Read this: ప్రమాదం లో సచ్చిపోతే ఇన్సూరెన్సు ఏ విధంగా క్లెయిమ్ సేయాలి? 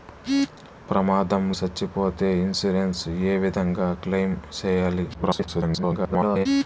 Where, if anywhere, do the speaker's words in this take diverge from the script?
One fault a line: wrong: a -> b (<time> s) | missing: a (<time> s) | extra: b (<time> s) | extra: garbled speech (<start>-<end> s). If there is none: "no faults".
missing: లో (1.4 s)
extra: garbled speech (5.1-6.5 s)